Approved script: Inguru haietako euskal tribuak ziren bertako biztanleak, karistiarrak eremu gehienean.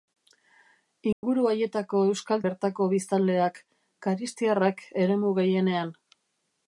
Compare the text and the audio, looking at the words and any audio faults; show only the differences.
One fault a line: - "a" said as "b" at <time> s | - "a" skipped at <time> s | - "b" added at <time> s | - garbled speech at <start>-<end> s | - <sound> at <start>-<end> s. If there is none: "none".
- dropout at 1.1-1.2 s
- "tribuak ziren" skipped at 2.5 s